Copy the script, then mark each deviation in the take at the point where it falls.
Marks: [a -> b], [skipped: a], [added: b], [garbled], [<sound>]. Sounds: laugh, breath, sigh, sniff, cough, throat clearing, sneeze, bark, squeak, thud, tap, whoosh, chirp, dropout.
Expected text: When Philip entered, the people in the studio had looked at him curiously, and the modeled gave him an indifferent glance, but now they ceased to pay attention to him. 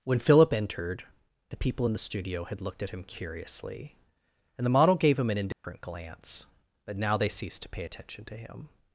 When Philip entered, the people in the studio had looked at him curiously, and the [modeled -> model] gave him an indifferent [dropout] glance, but now they ceased to pay attention to him.